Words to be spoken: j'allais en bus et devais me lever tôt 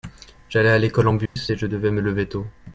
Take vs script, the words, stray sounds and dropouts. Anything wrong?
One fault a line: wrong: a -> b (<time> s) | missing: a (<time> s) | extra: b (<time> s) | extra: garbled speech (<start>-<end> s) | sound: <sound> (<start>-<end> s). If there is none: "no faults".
extra: à l'école (0.7 s)
sound: dropout (1.3-1.4 s)
extra: je (1.6 s)